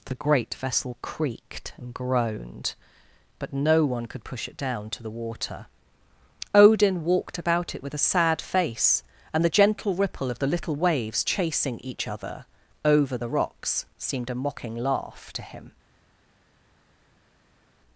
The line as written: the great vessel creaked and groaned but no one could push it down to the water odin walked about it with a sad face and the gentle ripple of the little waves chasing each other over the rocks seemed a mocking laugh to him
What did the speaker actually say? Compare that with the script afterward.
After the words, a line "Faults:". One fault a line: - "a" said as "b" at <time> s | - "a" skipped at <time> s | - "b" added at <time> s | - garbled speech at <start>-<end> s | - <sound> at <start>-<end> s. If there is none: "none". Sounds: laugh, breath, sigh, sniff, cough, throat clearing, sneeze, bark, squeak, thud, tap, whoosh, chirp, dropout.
the great vessel creaked and groaned but no one could push it down to the water odin walked about it with a sad face and the gentle ripple of the little waves chasing each other over the rocks seemed a mocking laugh to him
Faults:
none